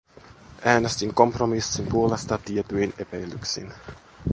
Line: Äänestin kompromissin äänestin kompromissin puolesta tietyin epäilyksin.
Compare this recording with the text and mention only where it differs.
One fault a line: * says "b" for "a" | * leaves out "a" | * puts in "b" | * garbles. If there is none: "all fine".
* leaves out "äänestin kompromissin"